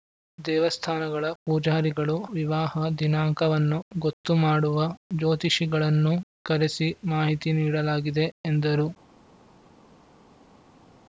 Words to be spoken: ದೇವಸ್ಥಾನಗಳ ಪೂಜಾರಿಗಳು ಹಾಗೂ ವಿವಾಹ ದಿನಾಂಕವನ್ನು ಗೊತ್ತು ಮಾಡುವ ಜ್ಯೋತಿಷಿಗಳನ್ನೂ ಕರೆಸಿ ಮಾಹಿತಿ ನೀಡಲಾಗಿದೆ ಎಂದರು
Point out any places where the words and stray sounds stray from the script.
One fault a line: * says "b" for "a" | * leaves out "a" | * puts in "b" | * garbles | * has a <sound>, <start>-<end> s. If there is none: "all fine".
* leaves out "ಹಾಗೂ"